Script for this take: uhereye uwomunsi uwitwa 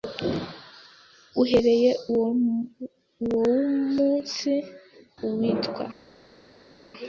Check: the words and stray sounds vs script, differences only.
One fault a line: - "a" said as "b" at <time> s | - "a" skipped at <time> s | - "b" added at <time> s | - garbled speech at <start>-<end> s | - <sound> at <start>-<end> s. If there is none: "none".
none